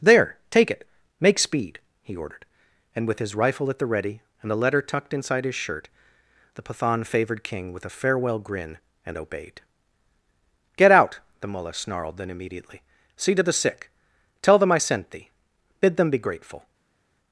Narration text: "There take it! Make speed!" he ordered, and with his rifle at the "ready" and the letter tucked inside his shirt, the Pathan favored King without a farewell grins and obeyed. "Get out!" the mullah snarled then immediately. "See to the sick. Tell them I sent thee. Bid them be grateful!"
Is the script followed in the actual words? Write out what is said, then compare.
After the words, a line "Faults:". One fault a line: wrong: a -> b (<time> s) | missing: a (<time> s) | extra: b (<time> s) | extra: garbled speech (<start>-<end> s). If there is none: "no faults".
"There take it! Make speed!" he ordered, and with his rifle at the "ready" and the letter tucked inside his shirt, the Pathan favored King with a farewell grin and obeyed. "Get out!" the mullah snarled then immediately. "See to the sick. Tell them I sent thee. Bid them be grateful!"
Faults:
wrong: without -> with (7.7 s)
wrong: grins -> grin (8.4 s)